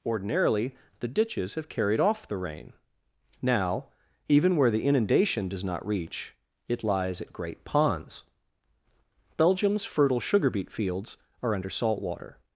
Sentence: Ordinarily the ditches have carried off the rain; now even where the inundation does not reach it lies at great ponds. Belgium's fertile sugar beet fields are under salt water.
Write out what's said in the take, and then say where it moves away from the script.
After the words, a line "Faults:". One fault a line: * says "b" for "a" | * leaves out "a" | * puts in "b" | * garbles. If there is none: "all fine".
Ordinarily the ditches have carried off the rain; now even where the inundation does not reach it lies at great ponds. Belgium's fertile sugar beet fields are under salt water.
Faults:
all fine